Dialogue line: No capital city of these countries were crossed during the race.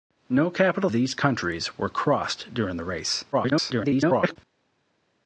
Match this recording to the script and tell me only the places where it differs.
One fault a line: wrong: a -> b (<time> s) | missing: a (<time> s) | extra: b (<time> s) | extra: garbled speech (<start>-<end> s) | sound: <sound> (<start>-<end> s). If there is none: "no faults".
missing: city of (0.9 s)
extra: garbled speech (3.3-4.4 s)